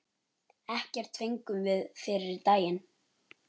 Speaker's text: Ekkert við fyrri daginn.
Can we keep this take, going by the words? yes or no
no